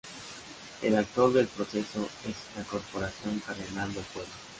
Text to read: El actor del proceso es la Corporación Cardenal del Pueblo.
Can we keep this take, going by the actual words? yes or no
yes